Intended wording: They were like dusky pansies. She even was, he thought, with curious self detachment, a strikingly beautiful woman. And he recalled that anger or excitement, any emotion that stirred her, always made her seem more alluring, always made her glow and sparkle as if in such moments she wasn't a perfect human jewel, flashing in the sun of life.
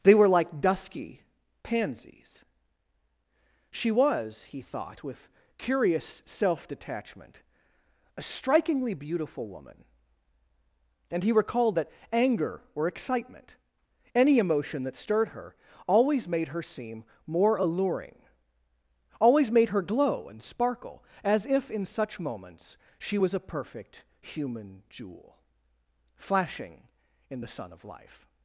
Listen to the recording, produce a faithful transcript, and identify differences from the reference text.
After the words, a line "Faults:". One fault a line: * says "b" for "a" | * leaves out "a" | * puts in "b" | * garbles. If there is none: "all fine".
They were like dusky pansies. She was, he thought, with curious self detachment, a strikingly beautiful woman. And he recalled that anger or excitement, any emotion that stirred her, always made her seem more alluring, always made her glow and sparkle as if in such moments she was a perfect human jewel, flashing in the sun of life.
Faults:
* leaves out "even"
* says "was" for "wasn't"